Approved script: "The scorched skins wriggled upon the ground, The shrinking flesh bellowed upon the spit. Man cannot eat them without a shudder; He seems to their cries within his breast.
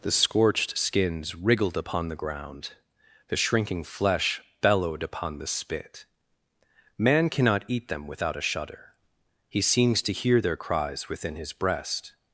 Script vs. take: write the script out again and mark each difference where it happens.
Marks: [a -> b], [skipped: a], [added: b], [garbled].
"The scorched skins wriggled upon the ground, The shrinking flesh bellowed upon the spit. Man cannot eat them without a shudder; He seems to [added: hear] their cries within his breast.